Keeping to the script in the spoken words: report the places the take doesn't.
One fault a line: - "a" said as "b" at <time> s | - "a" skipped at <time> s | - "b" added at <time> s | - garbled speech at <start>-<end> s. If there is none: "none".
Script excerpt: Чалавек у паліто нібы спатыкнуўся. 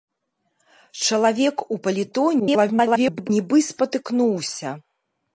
- garbled speech at 2.4-3.3 s